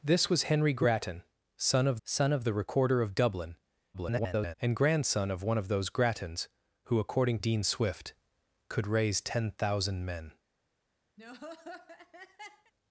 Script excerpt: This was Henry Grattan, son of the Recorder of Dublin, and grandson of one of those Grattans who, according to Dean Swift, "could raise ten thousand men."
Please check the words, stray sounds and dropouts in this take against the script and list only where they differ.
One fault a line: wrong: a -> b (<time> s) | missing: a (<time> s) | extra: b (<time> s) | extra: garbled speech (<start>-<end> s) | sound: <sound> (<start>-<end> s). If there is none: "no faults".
extra: son of (2.0 s)
extra: garbled speech (3.9-4.6 s)
missing: to (7.4 s)
sound: laugh (11.2-12.7 s)